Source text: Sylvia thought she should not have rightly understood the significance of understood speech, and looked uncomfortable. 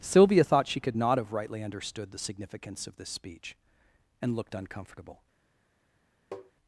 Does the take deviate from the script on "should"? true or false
true